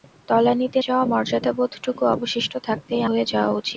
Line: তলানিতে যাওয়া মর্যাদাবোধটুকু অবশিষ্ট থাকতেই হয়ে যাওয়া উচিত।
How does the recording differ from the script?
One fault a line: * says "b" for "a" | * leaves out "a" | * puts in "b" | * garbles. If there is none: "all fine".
all fine